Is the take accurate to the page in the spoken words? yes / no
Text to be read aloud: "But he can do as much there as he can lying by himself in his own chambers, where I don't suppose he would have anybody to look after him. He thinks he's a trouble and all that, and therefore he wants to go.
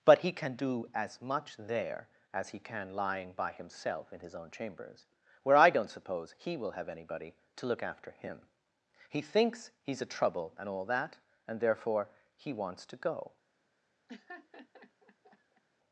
no